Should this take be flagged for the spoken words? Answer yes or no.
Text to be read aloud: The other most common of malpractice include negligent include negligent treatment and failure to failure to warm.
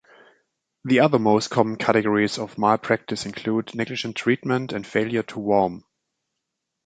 yes